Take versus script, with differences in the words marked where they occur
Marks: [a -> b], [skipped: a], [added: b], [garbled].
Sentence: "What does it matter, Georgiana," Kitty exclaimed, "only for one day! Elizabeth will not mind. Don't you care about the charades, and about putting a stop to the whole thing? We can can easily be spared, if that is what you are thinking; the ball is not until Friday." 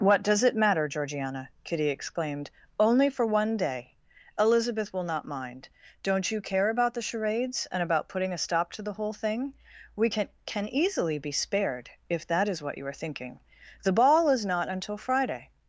"What does it matter, Georgiana," Kitty exclaimed, "only for one day! Elizabeth will not mind. Don't you care about the charades, and about putting a stop to the whole thing? We can can easily be spared, if that is what you are thinking; the ball is not until Friday."